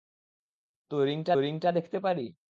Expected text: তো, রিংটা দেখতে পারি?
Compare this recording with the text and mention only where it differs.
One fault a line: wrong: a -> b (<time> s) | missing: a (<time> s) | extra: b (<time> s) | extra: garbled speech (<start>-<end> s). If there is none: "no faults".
extra: রিংটা (1.4 s)